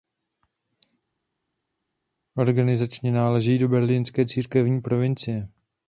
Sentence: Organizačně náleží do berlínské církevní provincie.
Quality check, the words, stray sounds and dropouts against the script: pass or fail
pass